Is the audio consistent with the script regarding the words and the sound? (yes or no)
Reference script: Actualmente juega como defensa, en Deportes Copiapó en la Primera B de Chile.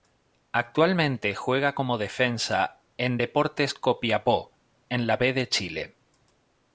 no